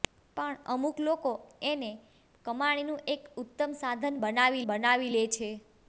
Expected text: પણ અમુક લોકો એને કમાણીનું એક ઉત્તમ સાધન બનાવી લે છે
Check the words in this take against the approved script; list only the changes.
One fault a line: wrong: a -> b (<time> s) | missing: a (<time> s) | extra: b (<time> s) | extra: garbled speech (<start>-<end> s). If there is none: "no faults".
extra: બનાવી (4.7 s)